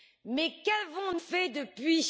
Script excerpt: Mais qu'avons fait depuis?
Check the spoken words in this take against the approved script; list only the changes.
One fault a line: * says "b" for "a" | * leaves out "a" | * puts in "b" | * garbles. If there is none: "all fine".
all fine